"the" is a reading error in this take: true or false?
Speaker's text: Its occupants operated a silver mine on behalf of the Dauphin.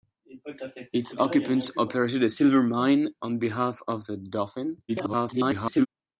false